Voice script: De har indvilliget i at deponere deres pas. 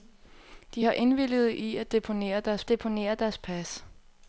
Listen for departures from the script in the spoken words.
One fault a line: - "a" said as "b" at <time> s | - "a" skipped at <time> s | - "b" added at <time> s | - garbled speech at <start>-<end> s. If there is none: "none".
- "deponere deres" added at 2.7 s